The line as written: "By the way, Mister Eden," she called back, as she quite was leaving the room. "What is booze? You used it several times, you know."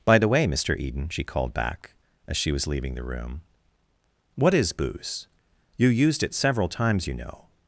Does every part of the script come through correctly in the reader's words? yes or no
no